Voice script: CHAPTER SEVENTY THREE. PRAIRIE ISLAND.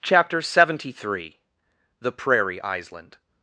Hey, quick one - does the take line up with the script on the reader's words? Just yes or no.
no